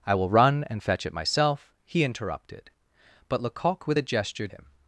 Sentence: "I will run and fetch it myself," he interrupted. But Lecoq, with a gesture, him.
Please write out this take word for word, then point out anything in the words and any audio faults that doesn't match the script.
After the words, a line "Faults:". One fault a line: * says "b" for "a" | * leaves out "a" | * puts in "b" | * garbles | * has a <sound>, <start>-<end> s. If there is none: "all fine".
"I will run and fetch it myself," he interrupted. But Lecoq, with a gesture, him.
Faults:
all fine